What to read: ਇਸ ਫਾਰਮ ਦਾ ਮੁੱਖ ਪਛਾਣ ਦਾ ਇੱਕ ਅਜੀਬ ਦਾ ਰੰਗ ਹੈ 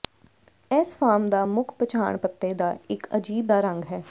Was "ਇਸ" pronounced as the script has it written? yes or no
yes